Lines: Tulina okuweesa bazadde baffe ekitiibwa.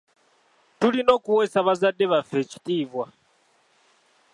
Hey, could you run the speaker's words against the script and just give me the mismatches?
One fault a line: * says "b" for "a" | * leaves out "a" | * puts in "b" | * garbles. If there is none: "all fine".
all fine